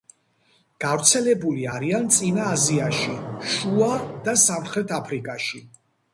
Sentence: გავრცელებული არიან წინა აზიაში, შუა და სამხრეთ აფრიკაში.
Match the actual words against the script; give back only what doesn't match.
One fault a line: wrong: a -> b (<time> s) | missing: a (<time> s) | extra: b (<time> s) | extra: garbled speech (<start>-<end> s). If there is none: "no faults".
no faults